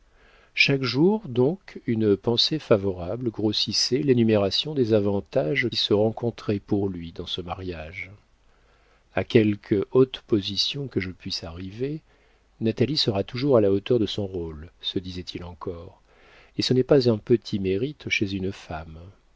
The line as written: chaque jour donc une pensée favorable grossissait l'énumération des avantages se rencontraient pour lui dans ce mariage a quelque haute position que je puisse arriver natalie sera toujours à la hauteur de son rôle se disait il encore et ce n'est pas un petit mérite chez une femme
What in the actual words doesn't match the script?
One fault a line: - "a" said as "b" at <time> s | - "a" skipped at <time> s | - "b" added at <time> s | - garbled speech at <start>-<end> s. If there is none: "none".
none